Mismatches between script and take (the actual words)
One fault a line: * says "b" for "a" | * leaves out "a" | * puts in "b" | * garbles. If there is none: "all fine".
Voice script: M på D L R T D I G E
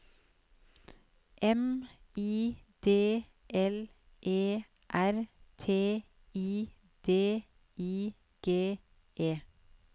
* says "I" for "på"
* puts in "E"
* puts in "I"